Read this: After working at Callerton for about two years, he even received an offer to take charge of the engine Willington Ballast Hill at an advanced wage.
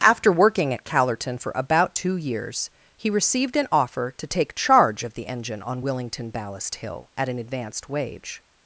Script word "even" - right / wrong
wrong